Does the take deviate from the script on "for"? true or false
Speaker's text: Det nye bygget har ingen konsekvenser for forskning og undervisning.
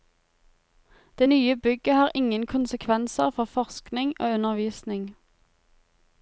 false